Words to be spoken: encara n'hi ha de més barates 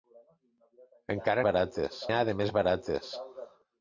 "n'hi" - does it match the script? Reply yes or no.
no